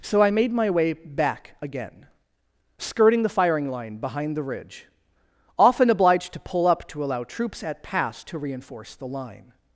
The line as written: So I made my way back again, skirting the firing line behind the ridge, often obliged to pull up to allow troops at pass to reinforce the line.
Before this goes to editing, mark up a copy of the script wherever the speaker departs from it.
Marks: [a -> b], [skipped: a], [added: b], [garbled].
So I made my way back again, skirting the firing line behind the ridge, often obliged to pull up to allow troops at pass to reinforce the line.